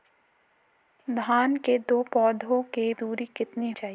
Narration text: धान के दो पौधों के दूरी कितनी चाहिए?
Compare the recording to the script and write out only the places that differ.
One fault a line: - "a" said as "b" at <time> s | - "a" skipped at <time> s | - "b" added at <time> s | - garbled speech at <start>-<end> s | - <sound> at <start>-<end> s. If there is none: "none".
none